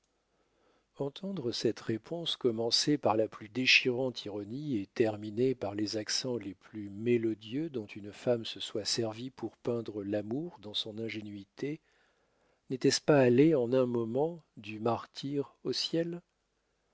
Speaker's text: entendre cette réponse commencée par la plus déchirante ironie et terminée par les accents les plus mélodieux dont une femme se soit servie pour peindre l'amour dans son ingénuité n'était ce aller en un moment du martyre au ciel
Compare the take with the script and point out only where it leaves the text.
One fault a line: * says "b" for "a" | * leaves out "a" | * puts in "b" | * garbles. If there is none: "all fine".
* puts in "pas"